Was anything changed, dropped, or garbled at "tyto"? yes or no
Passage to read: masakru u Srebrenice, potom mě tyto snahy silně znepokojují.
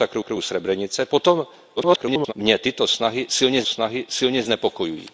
no